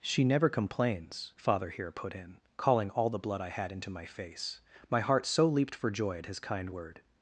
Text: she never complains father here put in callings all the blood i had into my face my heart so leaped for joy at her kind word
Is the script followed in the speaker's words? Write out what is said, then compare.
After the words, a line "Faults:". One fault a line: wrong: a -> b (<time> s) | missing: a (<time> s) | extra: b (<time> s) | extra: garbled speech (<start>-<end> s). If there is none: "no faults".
she never complains father here put in calling all the blood i had into my face my heart so leaped for joy at his kind word
Faults:
wrong: callings -> calling (2.6 s)
wrong: her -> his (6.3 s)